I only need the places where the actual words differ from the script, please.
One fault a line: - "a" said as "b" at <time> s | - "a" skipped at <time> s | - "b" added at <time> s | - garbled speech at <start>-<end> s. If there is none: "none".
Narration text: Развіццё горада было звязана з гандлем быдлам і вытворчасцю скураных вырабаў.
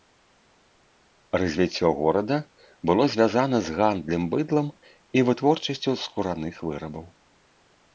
none